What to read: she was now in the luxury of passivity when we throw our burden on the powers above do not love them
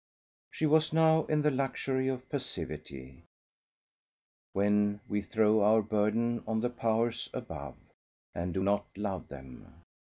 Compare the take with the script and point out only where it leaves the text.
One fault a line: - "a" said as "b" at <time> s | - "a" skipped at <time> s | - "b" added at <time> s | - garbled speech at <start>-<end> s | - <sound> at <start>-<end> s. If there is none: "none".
- "and" added at 8.3 s